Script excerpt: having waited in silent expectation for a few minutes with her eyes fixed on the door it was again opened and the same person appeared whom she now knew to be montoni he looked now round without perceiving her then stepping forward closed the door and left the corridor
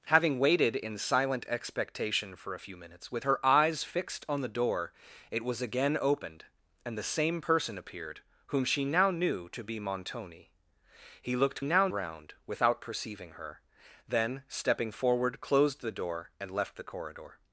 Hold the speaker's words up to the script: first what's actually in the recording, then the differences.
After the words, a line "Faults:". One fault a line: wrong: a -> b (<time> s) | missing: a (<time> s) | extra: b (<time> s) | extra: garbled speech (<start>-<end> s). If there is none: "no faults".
having waited in silent expectation for a few minutes with her eyes fixed on the door it was again opened and the same person appeared whom she now knew to be montoni he looked now round without perceiving her then stepping forward closed the door and left the corridor
Faults:
no faults